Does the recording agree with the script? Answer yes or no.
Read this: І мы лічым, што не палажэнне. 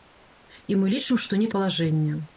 yes